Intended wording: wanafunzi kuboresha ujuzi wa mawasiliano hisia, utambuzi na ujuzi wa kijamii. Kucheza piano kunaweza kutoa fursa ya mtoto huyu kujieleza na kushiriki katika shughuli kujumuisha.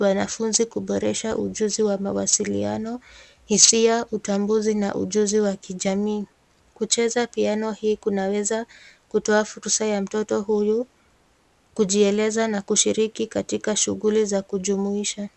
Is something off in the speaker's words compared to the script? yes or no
yes